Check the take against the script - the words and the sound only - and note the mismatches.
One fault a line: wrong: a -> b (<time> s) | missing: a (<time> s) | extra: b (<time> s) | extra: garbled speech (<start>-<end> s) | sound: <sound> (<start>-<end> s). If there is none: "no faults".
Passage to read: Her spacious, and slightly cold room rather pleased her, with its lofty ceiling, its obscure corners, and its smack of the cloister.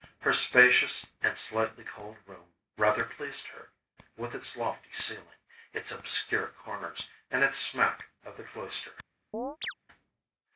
sound: chirp (9.3-9.7 s)